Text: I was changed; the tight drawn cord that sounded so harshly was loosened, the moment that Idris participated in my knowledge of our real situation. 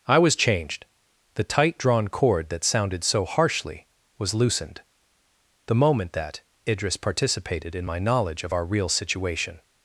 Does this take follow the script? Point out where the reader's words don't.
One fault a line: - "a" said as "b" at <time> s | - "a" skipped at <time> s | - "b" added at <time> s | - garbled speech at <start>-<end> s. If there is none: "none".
none